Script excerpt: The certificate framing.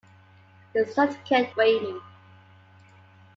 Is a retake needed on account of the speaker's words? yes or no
no